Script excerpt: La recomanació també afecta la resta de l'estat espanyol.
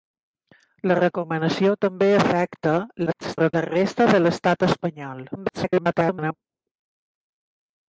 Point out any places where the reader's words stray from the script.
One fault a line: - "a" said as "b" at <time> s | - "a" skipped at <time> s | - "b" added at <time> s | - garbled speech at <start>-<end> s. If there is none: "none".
- garbled speech at 3.1-3.5 s
- garbled speech at 5.3-6.3 s